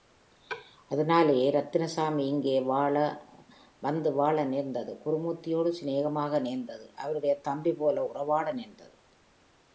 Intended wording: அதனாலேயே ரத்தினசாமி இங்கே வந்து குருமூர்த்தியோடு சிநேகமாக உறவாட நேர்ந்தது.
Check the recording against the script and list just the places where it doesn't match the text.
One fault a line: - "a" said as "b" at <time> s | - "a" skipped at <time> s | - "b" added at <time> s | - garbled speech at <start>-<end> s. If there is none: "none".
- "வாழ நேர்ந்தது" added at 4.1 s
- "நேர்ந்தது அவருடைய தம்பிபோல" added at 6.4 s